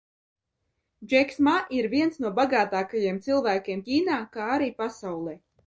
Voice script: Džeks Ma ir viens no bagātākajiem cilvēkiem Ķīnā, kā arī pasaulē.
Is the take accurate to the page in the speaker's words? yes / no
yes